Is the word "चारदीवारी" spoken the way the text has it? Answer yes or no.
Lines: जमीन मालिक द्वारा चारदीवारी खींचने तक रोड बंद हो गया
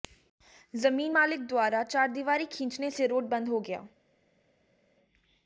yes